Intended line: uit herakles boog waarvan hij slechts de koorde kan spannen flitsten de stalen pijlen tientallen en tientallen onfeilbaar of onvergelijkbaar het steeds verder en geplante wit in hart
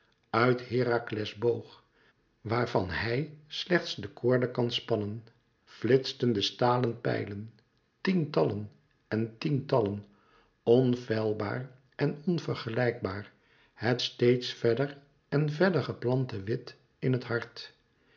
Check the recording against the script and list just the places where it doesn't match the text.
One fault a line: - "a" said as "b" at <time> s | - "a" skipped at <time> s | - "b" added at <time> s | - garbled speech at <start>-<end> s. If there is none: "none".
- "of" said as "en" at 11.9 s
- "verder" added at 15.5 s
- "het" added at 17.1 s